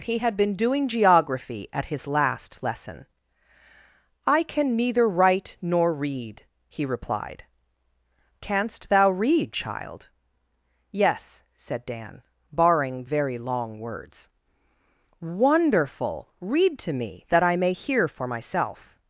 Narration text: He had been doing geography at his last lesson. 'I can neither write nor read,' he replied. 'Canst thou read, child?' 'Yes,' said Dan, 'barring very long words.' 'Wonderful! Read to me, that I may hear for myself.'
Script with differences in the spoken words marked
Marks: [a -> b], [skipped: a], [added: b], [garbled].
He had been doing geography at his last lesson. 'I can neither write nor read,' he replied. 'Canst thou read, child?' 'Yes,' said Dan, 'barring very long words.' 'Wonderful! Read to me, that I may hear for myself.'